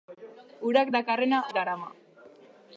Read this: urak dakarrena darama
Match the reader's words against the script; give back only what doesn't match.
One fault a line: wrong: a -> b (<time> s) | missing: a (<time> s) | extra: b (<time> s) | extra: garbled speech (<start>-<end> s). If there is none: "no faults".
no faults